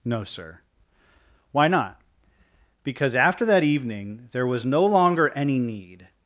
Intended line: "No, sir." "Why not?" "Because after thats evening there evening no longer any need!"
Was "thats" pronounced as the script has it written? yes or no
no